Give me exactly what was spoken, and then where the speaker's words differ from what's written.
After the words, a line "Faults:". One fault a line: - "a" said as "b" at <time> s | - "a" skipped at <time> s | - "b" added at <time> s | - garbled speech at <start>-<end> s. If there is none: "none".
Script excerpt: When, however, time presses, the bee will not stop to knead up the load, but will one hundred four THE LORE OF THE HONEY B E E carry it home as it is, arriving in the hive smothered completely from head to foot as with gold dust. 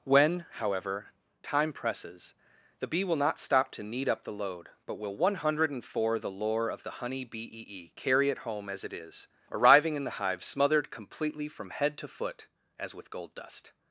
When, however, time presses, the bee will not stop to knead up the load, but will one hundred four THE LORE OF THE HONEY B E E carry it home as it is, arriving in the hive smothered completely from head to foot as with gold dust.
Faults:
none